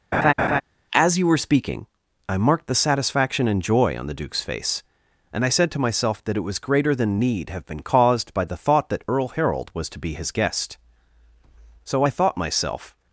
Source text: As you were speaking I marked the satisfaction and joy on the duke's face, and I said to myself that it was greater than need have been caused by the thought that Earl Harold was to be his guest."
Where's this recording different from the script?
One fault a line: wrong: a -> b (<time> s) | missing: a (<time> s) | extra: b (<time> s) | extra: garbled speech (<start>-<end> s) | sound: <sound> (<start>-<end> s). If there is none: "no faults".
sound: laugh (0.1-0.6 s)
extra: So I thought myself (11.9 s)